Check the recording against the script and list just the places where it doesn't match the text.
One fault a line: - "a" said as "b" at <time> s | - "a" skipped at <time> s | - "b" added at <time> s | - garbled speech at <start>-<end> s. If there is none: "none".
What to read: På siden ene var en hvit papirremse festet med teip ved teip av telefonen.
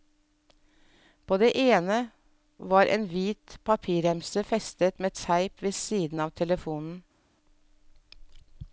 - "siden" said as "det" at 1.4 s
- "teip" said as "siden" at 5.7 s